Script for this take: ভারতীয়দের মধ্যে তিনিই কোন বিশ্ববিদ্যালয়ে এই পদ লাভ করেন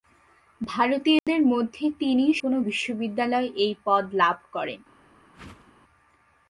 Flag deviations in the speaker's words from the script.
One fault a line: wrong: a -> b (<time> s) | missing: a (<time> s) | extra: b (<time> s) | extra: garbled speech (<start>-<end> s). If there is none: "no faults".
no faults